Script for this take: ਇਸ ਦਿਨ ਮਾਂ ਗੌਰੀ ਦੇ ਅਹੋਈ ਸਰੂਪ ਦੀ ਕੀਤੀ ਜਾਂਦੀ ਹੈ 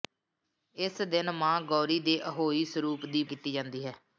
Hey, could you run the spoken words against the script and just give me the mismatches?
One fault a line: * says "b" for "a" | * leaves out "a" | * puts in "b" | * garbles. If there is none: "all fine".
all fine